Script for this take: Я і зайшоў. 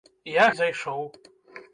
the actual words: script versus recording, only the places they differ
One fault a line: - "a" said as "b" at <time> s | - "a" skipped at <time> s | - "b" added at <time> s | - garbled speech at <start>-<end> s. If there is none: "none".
none